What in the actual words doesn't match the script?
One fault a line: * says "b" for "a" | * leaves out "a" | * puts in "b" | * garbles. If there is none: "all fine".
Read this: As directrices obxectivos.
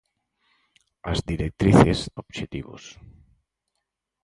all fine